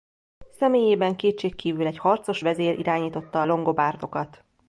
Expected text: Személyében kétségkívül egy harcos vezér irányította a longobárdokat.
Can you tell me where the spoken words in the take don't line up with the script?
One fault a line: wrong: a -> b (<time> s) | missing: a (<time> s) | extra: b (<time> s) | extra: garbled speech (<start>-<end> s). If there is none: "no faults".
no faults